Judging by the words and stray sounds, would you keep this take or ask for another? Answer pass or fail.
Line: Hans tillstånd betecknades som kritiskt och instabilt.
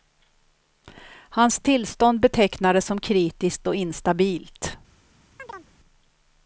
fail